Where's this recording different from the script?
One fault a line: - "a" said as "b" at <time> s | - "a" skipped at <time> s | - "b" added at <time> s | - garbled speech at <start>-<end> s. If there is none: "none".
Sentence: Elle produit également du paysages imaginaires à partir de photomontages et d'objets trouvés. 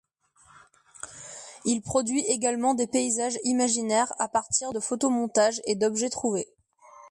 - "Elle" said as "Il" at 1.6 s
- "du" said as "des" at 2.7 s